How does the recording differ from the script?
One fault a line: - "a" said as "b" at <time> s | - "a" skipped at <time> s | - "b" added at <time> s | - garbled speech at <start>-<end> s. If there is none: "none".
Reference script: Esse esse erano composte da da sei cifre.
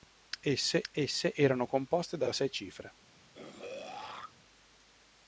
none